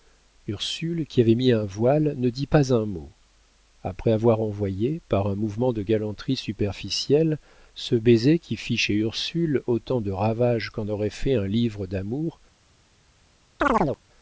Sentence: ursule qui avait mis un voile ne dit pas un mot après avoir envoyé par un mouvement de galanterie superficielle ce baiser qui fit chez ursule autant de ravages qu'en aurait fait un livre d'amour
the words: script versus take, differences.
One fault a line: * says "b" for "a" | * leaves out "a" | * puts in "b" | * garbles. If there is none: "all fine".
all fine